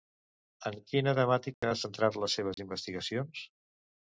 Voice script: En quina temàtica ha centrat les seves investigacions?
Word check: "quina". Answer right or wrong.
right